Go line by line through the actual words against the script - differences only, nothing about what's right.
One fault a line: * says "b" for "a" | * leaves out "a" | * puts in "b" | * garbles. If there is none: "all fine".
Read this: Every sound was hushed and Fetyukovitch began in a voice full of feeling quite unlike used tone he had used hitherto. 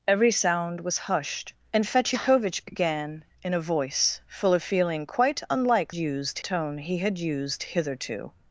all fine